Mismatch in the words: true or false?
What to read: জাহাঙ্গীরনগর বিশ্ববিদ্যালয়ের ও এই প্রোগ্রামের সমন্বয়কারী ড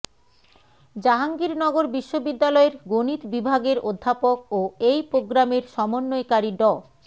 true